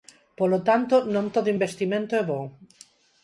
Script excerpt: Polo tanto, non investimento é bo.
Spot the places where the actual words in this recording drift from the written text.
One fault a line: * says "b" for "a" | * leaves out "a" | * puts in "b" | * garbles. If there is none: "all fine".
* puts in "todo"